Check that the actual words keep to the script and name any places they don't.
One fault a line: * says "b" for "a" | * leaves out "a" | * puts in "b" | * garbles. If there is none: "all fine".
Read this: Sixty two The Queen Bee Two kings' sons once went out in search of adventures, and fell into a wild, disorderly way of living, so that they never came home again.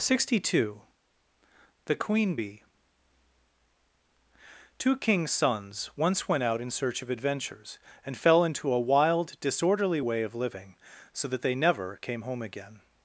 all fine